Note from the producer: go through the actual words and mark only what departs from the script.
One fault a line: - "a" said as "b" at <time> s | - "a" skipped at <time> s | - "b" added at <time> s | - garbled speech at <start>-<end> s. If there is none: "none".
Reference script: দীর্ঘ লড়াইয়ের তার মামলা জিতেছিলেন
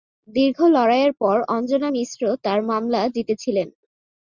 - "পর অঞ্জনা মিশ্র" added at 1.2 s